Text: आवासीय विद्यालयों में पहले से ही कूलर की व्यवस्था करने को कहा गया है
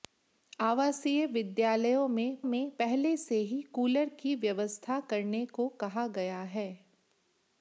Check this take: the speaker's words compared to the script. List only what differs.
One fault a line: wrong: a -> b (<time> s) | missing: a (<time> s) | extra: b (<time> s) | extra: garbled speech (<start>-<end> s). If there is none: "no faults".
extra: में (2.4 s)